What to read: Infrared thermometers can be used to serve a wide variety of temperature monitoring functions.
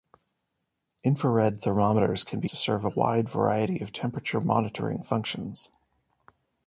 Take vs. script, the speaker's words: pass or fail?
fail